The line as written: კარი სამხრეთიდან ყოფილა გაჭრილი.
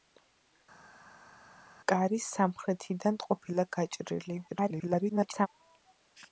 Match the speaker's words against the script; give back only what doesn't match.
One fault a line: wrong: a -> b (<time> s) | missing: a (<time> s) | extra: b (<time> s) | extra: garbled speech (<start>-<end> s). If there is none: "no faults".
extra: garbled speech (4.5-5.5 s)